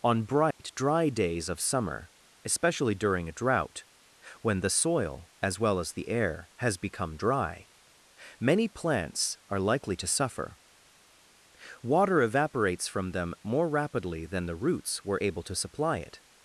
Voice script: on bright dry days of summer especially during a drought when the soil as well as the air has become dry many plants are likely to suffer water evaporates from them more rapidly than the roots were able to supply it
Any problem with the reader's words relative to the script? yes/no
no